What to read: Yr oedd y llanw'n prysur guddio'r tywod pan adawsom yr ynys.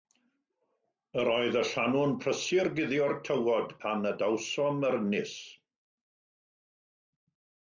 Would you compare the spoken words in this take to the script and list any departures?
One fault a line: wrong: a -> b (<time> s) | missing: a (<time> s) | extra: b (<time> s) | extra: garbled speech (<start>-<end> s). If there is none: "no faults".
no faults